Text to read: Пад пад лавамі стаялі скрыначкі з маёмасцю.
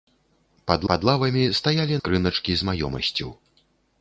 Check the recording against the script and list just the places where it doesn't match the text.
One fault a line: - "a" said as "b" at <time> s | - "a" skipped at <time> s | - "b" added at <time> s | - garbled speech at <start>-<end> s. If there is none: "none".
none